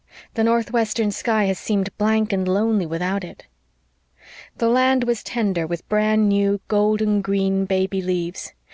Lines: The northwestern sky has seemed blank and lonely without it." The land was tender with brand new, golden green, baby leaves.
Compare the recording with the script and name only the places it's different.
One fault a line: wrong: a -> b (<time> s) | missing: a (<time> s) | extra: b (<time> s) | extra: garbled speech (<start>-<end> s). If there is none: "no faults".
no faults